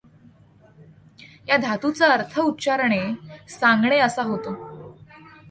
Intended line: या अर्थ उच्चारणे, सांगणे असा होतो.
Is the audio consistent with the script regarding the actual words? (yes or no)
no